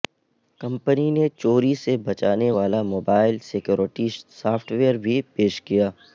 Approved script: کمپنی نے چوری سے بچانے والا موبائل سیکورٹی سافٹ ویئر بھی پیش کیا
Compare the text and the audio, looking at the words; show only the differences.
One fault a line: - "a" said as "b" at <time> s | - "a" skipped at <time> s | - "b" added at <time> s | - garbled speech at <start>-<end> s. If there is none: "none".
none